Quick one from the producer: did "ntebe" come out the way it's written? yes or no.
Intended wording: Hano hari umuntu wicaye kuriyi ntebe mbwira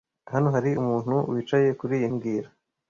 no